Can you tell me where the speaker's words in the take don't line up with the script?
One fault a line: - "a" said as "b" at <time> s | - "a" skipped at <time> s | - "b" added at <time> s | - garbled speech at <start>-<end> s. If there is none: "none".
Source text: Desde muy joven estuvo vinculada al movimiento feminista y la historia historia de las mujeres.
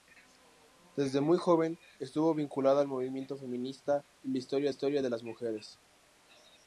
none